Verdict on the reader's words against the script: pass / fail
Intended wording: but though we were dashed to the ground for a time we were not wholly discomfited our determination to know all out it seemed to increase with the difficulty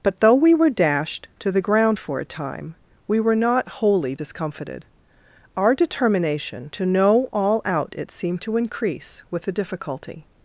pass